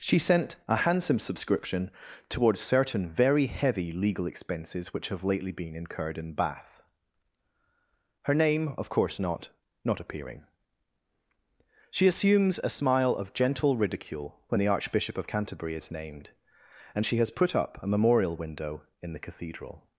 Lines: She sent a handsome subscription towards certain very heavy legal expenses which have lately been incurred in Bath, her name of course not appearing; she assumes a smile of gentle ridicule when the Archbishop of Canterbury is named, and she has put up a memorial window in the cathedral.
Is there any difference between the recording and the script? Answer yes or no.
yes